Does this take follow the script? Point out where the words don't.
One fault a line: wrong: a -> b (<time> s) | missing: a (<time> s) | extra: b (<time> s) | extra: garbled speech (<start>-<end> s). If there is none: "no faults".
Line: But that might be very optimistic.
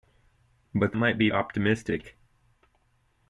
missing: that (0.9 s)
missing: very (1.3 s)